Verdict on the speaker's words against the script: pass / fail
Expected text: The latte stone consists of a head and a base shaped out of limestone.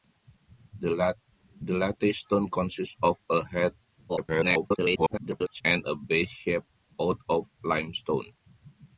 fail